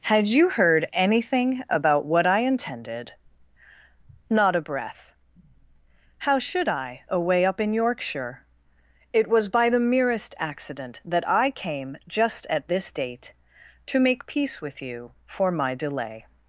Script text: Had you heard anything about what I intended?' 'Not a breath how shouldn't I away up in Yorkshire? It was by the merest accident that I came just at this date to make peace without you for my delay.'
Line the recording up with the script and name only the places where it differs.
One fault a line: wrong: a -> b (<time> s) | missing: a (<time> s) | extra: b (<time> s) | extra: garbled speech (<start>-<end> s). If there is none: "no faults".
wrong: shouldn't -> should (6.4 s)
wrong: without -> with (14.6 s)